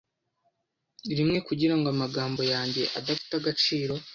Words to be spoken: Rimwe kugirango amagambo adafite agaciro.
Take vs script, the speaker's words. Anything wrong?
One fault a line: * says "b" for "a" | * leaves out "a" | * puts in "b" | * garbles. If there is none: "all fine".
* puts in "yanjye"